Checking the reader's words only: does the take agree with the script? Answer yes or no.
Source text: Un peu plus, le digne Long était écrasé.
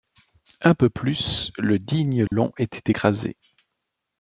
yes